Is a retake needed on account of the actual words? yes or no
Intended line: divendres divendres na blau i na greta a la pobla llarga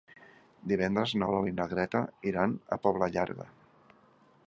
yes